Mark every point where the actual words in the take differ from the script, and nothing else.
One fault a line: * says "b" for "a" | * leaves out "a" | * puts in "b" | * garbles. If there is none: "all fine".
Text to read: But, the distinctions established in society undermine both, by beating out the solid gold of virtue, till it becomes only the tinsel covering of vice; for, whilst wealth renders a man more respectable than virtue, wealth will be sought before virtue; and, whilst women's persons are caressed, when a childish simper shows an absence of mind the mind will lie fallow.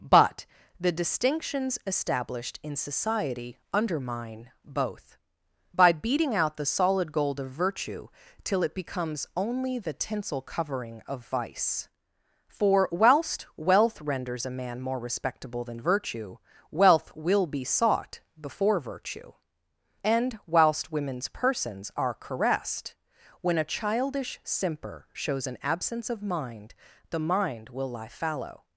all fine